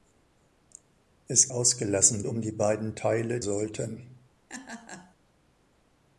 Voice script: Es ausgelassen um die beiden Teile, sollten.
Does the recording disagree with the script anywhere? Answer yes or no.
no